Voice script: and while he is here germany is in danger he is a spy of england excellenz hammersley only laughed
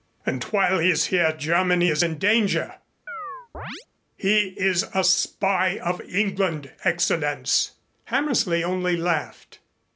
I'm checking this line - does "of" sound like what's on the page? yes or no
yes